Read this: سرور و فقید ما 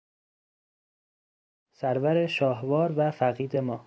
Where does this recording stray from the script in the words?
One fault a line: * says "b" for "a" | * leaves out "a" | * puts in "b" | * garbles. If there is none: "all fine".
* puts in "شاهوار"